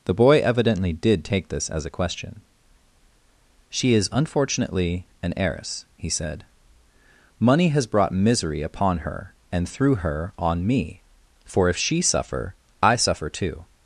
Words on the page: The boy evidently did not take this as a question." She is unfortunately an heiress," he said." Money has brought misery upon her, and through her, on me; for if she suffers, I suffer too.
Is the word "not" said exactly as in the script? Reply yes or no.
no